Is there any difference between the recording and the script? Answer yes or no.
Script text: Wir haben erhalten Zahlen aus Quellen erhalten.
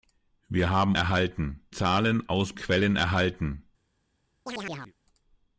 no